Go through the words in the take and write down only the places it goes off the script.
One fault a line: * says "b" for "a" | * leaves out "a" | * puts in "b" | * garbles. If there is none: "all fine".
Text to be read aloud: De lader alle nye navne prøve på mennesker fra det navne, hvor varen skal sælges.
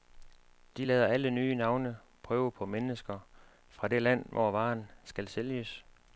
* says "land" for "navne"